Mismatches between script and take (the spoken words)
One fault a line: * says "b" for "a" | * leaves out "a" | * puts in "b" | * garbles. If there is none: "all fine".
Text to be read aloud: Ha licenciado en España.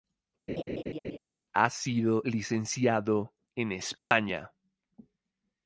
* puts in "sido"